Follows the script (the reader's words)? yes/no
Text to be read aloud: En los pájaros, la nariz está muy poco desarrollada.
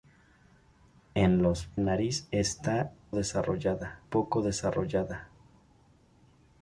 no